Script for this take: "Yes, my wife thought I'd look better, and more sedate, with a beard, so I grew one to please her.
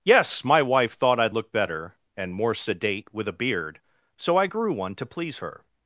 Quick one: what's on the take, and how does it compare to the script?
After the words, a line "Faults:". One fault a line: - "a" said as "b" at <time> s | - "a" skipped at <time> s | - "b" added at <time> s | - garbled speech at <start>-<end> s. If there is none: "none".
"Yes, my wife thought I'd look better, and more sedate, with a beard, so I grew one to please her.
Faults:
none